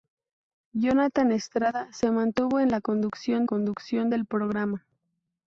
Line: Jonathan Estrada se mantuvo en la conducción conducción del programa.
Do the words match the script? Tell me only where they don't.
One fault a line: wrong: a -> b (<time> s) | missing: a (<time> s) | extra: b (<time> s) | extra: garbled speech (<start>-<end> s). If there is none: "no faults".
no faults